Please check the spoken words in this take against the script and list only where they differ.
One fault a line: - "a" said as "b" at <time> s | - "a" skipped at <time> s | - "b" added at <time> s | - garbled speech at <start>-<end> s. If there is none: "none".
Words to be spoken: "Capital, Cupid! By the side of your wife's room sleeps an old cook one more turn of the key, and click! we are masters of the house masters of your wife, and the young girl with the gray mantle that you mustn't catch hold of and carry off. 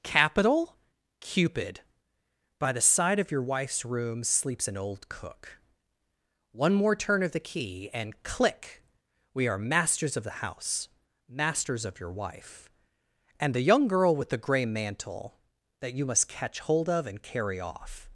- "mustn't" said as "must" at 16.1 s